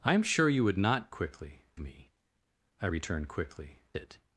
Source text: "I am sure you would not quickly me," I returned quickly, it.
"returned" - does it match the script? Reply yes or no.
yes